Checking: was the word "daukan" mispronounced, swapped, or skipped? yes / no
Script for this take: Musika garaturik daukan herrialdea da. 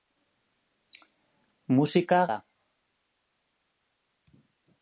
yes